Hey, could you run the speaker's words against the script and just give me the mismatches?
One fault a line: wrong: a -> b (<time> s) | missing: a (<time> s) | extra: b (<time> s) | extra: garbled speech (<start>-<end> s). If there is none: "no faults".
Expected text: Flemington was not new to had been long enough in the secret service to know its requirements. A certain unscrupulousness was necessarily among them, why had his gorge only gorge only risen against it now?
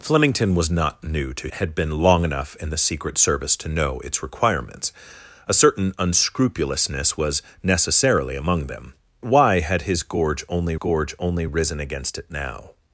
no faults